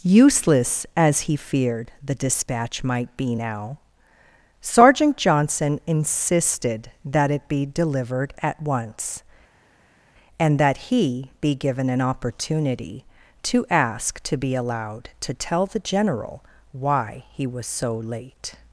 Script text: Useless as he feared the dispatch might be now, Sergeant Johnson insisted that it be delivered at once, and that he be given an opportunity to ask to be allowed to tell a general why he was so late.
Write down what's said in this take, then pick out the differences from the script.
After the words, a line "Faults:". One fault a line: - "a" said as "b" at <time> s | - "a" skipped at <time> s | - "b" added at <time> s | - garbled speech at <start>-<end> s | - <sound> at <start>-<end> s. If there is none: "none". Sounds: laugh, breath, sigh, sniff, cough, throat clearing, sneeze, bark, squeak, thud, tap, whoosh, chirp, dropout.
Useless as he feared the dispatch might be now, Sergeant Johnson insisted that it be delivered at once, and that he be given an opportunity to ask to be allowed to tell the general why he was so late.
Faults:
- "a" said as "the" at 15.6 s